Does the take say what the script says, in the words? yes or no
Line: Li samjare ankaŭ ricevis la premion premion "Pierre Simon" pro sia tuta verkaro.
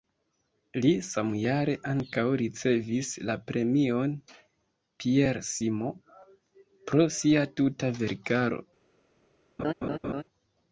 no